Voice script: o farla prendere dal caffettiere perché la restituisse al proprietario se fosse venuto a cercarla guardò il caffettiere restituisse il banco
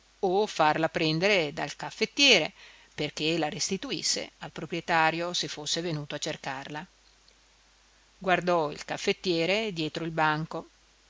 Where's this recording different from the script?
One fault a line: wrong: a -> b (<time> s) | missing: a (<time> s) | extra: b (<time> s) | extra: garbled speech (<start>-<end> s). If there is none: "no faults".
wrong: restituisse -> dietro (9.7 s)